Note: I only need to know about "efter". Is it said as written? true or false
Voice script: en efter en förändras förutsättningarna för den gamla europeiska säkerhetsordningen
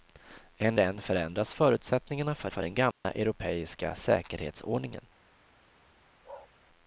false